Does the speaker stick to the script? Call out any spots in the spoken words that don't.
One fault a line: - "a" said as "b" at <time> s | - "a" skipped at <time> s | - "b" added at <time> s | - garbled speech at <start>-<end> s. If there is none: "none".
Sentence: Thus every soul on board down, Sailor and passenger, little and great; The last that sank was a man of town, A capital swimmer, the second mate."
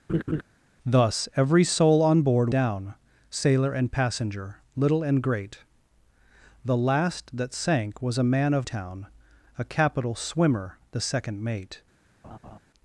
none